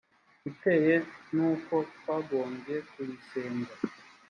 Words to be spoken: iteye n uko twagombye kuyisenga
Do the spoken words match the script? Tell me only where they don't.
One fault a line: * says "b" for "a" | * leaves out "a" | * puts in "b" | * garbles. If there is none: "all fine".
all fine